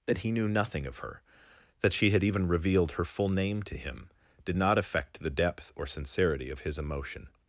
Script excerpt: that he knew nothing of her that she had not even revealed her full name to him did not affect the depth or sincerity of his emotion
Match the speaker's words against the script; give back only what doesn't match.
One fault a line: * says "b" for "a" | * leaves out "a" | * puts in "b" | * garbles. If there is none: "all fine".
* leaves out "not"